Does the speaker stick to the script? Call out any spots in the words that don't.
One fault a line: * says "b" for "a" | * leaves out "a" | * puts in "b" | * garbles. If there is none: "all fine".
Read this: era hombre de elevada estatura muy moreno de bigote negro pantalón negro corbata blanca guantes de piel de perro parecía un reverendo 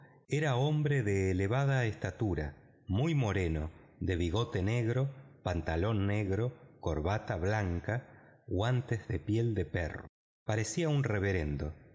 all fine